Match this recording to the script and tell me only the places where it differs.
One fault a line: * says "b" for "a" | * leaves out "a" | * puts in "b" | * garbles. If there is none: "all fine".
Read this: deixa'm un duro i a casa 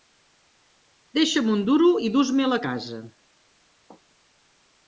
* puts in "dus me'l"